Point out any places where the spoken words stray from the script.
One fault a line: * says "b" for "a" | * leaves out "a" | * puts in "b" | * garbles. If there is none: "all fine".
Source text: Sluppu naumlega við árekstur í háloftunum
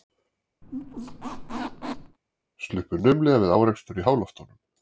all fine